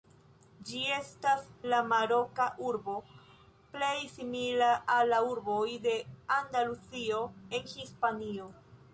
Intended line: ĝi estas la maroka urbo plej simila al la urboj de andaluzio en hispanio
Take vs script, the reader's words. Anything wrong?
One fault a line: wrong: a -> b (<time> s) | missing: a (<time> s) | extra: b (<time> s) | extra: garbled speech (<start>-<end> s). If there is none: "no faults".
no faults